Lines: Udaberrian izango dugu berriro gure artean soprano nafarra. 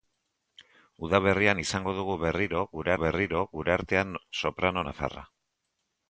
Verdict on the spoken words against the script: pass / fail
fail